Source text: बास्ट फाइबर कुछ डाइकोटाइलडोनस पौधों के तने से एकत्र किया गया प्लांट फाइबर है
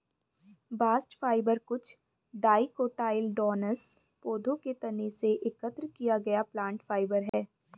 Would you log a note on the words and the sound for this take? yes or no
yes